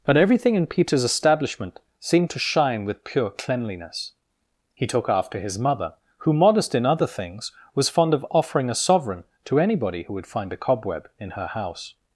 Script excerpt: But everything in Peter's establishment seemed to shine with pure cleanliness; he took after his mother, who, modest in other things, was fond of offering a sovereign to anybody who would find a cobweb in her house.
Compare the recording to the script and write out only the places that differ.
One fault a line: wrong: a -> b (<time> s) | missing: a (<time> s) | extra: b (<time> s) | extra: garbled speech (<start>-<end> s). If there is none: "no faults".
no faults